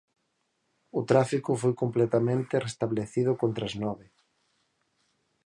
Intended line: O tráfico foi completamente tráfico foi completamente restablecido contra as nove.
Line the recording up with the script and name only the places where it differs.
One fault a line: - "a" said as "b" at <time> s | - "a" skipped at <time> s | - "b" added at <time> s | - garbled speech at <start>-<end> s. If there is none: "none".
- "tráfico foi completamente" skipped at 2.5 s